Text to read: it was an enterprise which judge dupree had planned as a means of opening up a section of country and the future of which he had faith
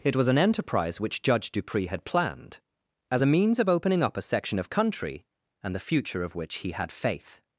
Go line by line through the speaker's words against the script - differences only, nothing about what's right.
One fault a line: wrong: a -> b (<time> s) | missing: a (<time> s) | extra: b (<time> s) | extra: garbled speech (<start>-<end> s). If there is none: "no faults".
no faults